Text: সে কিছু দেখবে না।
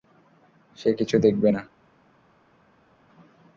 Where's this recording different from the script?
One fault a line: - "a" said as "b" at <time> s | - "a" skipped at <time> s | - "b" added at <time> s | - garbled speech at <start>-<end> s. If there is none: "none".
none